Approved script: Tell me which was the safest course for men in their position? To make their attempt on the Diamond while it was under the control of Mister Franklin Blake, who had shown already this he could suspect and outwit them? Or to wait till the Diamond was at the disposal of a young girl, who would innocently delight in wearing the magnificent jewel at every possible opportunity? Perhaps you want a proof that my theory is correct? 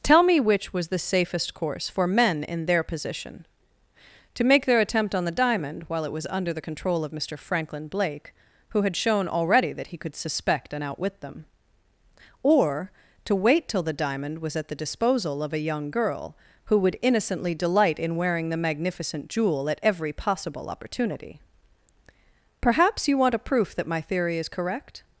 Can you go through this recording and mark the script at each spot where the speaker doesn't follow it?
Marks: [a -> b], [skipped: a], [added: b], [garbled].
Tell me which was the safest course for men in their position? To make their attempt on the Diamond while it was under the control of Mister Franklin Blake, who had shown already [this -> that] he could suspect and outwit them? Or to wait till the Diamond was at the disposal of a young girl, who would innocently delight in wearing the magnificent jewel at every possible opportunity? Perhaps you want a proof that my theory is correct?